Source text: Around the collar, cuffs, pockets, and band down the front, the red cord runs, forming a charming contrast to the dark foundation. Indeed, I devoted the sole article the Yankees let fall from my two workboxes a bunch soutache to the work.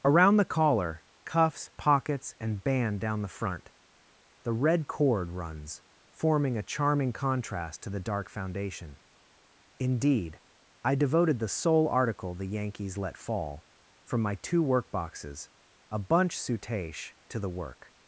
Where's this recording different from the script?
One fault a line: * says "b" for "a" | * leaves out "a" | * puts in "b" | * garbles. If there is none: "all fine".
all fine